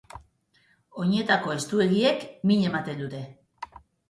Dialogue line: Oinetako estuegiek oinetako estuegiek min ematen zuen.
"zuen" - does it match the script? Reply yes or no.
no